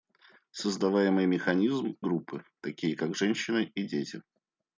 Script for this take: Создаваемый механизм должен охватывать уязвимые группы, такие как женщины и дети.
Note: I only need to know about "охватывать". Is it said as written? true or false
false